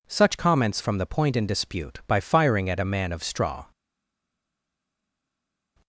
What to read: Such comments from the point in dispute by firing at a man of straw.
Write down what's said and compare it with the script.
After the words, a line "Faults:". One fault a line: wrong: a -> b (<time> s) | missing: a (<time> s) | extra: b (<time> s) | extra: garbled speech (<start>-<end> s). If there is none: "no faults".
Such comments from the point in dispute by firing at a man of straw.
Faults:
no faults